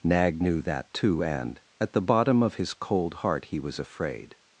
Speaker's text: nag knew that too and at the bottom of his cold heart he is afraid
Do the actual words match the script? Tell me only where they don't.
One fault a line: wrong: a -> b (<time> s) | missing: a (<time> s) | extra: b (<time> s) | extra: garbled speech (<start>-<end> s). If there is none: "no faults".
wrong: is -> was (3.6 s)